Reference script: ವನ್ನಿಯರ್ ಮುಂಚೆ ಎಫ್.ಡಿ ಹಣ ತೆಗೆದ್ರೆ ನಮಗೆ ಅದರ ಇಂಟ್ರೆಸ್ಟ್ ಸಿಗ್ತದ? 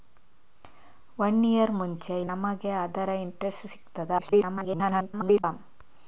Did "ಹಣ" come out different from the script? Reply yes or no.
yes